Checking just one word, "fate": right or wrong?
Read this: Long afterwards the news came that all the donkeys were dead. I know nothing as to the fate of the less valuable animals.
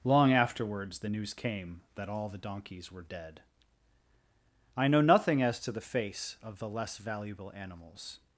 wrong